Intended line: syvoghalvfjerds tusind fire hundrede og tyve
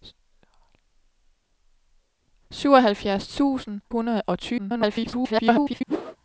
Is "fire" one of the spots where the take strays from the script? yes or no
yes